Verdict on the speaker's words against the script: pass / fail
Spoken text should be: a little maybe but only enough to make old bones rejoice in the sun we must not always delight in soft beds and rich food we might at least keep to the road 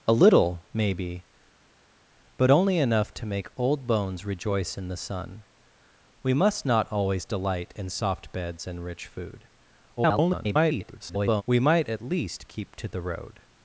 fail